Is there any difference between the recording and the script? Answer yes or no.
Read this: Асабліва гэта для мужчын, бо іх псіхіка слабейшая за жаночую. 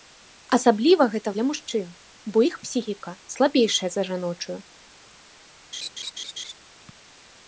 no